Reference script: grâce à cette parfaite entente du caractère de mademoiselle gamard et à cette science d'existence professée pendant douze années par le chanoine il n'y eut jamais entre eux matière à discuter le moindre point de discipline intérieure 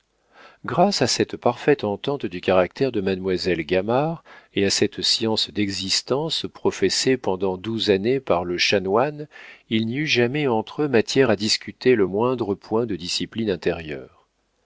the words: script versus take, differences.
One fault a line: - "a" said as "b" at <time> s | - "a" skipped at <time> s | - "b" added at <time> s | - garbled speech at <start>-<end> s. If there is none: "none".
none